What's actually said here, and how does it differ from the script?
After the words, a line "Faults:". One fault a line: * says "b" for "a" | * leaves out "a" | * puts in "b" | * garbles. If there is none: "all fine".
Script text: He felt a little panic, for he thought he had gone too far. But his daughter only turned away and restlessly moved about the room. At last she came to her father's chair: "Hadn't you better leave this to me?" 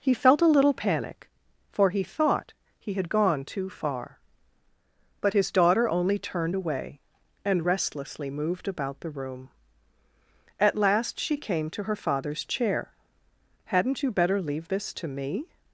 He felt a little panic, for he thought he had gone too far. But his daughter only turned away and restlessly moved about the room. At last she came to her father's chair: "Hadn't you better leave this to me?"
Faults:
all fine